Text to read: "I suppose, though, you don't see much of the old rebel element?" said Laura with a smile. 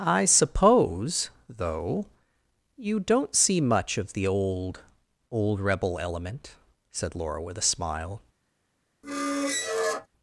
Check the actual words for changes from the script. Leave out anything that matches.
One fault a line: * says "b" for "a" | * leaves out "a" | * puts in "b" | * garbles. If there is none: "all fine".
* puts in "old"